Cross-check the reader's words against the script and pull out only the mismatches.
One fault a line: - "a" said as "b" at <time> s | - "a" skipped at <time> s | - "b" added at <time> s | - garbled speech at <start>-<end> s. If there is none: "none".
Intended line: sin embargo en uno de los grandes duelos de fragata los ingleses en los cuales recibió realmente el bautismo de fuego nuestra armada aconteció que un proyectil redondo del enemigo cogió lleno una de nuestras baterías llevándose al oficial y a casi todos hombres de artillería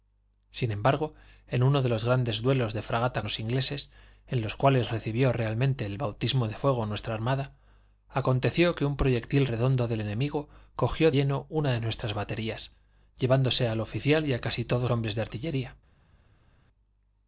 none